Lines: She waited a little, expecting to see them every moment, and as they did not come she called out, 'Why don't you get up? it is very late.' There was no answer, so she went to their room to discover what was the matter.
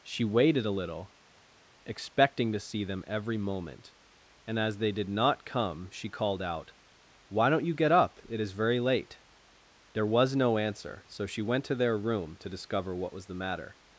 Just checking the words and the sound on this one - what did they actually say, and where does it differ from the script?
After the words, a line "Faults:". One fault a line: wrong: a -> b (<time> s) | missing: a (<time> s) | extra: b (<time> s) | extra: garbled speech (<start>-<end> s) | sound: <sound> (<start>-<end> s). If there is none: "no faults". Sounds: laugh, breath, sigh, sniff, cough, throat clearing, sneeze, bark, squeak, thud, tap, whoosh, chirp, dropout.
She waited a little, expecting to see them every moment, and as they did not come she called out, 'Why don't you get up? it is very late.' There was no answer, so she went to their room to discover what was the matter.
Faults:
no faults